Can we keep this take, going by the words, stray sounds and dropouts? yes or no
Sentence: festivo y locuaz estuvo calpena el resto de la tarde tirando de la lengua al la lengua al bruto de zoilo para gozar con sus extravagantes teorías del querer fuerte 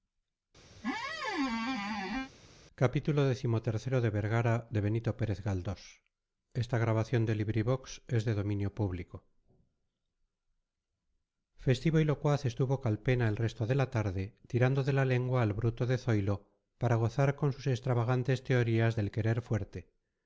no